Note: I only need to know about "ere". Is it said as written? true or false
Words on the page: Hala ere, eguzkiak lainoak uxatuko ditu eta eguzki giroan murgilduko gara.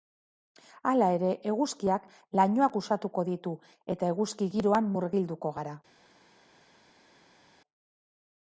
true